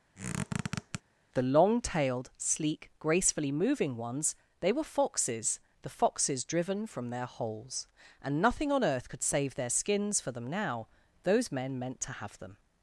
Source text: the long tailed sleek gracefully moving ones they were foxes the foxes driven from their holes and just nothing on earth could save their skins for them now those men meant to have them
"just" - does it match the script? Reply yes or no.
no